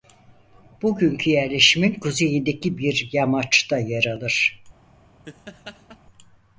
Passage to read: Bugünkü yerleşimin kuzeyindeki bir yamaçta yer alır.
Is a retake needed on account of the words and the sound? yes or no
yes